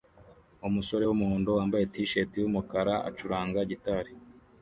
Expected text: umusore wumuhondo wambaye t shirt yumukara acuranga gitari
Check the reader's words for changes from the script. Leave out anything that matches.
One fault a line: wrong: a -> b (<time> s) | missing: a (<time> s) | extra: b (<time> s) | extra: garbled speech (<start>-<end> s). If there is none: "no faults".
no faults